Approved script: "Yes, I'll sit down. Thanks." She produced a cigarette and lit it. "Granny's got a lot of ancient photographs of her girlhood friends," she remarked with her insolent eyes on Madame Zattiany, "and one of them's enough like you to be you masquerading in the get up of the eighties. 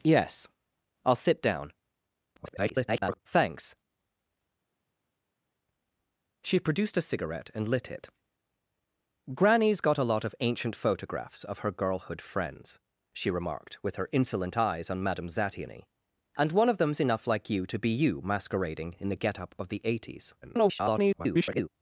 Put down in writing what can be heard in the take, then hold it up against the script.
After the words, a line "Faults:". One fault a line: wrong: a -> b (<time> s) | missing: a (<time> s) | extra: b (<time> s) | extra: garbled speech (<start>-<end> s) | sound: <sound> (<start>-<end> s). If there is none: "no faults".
"Yes, I'll sit down. [garbled] Thanks." She produced a cigarette and lit it. "Granny's got a lot of ancient photographs of her girlhood friends," she remarked with her insolent eyes on Madame Zattiany, "and one of them's enough like you to be you masquerading in the get up of the eighties. [garbled]
Faults:
extra: garbled speech (2.3-3.2 s)
extra: garbled speech (20.4-21.7 s)